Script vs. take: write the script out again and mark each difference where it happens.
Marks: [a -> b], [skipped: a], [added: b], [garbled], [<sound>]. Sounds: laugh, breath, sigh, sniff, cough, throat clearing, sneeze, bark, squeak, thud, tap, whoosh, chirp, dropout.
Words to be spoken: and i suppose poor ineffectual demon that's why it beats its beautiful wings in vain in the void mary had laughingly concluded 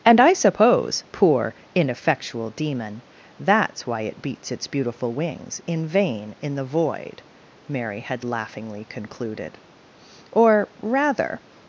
and i suppose poor ineffectual demon that's why it beats its beautiful wings in vain in the void mary had laughingly concluded [added: or rather]